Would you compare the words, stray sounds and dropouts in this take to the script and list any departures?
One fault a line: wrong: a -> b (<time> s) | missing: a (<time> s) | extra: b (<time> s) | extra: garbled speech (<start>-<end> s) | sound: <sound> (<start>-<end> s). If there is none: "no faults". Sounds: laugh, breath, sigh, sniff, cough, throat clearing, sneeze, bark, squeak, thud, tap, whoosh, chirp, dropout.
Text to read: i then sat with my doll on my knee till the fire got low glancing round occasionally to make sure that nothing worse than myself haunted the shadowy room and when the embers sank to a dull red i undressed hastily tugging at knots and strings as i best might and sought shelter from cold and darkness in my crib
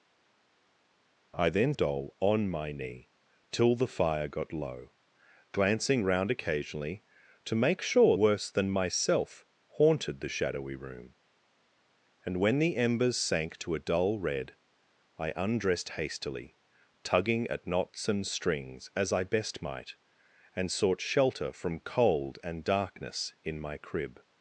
missing: sat with my (1.7 s)
missing: that nothing (8.2 s)